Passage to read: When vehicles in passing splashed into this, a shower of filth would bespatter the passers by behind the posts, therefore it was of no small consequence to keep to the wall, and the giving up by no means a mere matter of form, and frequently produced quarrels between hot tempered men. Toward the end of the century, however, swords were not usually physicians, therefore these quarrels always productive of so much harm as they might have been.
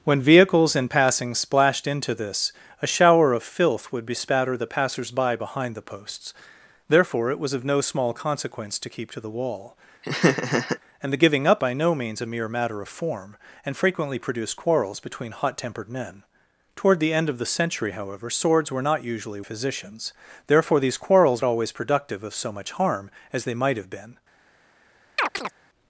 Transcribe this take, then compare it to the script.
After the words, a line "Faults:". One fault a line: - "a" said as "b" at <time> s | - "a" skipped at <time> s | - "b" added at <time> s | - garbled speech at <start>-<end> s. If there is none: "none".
When vehicles in passing splashed into this, a shower of filth would bespatter the passers by behind the posts, therefore it was of no small consequence to keep to the wall, and the giving up by no means a mere matter of form, and frequently produced quarrels between hot tempered men. Toward the end of the century, however, swords were not usually physicians, therefore these quarrels always productive of so much harm as they might have been.
Faults:
none